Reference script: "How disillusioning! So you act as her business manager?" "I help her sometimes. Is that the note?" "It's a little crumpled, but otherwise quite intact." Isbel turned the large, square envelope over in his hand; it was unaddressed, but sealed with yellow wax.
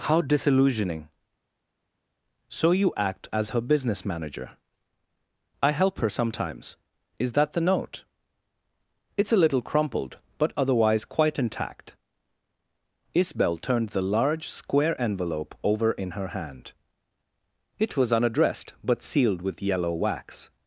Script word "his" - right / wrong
wrong